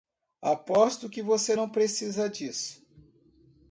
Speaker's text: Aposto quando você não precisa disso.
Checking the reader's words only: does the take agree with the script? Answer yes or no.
no